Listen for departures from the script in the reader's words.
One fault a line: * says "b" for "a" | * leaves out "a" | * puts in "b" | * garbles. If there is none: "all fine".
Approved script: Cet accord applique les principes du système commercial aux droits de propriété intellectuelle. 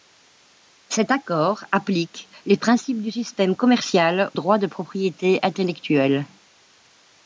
* leaves out "aux"